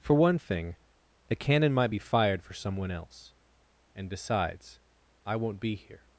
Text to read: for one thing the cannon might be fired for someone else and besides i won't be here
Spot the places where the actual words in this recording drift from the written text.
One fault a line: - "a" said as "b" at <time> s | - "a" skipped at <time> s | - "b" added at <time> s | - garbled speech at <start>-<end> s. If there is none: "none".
none